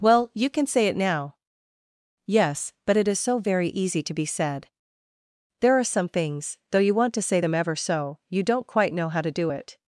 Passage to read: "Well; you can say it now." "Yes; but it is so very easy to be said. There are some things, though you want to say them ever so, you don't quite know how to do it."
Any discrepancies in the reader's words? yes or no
no